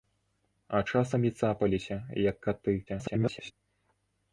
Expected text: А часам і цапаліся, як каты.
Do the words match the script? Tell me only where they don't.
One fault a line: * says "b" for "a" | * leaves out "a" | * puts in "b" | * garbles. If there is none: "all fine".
* garbles